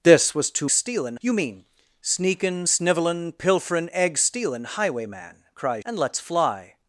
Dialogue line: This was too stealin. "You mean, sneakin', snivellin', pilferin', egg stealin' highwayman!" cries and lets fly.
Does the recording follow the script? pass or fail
pass